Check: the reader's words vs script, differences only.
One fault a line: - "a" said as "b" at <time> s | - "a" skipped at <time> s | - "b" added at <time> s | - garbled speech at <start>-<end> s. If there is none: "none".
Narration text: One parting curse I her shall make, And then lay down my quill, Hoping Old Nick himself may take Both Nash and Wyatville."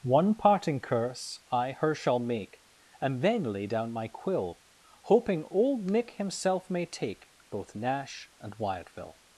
none